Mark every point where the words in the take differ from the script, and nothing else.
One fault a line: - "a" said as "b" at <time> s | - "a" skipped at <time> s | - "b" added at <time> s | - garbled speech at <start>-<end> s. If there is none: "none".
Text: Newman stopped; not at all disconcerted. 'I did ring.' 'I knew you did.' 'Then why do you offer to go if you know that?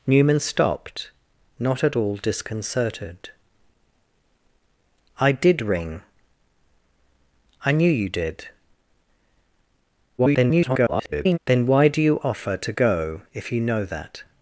- garbled speech at 10.2-11.4 s